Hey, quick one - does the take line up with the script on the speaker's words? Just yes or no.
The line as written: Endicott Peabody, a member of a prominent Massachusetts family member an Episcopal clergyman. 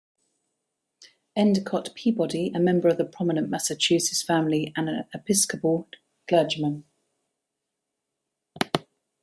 no